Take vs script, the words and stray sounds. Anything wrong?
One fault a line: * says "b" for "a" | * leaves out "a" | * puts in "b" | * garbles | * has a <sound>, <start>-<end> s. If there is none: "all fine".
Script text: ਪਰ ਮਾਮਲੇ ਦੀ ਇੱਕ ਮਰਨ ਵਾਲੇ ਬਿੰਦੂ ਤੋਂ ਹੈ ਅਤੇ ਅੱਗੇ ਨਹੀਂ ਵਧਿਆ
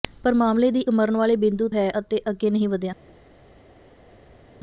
* leaves out "ਇੱਕ"
* leaves out "ਤੋਂ"